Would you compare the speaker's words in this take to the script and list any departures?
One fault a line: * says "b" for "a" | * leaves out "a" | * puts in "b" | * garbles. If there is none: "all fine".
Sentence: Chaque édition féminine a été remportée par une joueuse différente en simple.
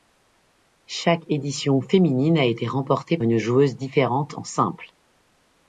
* leaves out "par"